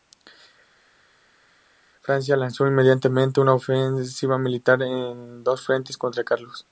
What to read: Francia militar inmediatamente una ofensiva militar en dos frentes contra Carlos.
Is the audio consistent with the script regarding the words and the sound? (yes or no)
no